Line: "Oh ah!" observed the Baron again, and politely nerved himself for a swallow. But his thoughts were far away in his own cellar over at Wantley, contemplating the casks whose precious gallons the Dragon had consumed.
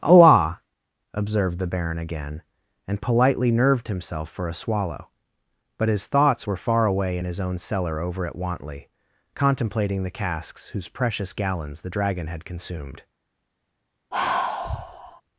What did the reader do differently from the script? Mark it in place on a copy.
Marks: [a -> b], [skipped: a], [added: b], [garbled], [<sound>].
"Oh ah!" observed the Baron again, and politely nerved himself for a swallow. But his thoughts were far away in his own cellar over at Wantley, contemplating the casks whose precious gallons the Dragon had consumed. [sigh]